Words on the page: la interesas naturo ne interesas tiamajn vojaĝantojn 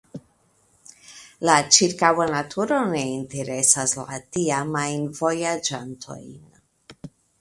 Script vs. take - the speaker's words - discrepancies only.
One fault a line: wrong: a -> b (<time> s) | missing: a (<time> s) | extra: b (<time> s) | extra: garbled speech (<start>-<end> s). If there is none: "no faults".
wrong: interesas -> ĉirkaŭa (1.8 s)
extra: la (4.0 s)